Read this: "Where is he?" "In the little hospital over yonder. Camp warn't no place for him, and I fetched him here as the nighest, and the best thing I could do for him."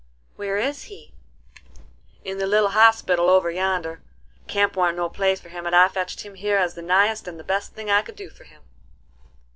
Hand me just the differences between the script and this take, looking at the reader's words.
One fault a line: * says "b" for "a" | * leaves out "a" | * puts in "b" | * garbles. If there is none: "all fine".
all fine